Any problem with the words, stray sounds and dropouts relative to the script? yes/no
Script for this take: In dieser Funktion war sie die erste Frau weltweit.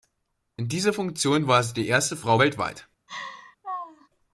yes